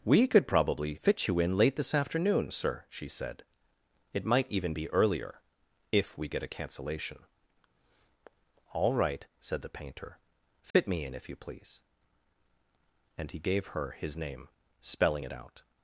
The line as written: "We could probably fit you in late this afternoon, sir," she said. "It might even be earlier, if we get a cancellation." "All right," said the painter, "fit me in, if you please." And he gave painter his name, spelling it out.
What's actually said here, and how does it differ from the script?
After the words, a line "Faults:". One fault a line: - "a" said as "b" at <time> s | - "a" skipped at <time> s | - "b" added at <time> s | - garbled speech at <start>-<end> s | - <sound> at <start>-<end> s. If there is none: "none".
"We could probably fit you in late this afternoon, sir," she said. "It might even be earlier, if we get a cancellation." "All right," said the painter, "fit me in, if you please." And he gave her his name, spelling it out.
Faults:
- dropout at 10.7-10.7 s
- "painter" said as "her" at 13.7 s